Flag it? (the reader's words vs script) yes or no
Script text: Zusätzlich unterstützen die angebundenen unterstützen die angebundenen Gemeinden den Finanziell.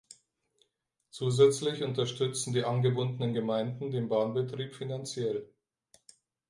yes